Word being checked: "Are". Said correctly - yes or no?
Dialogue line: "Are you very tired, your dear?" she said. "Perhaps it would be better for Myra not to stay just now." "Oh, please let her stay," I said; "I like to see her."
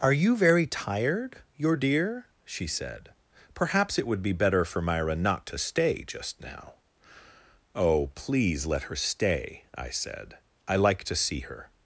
yes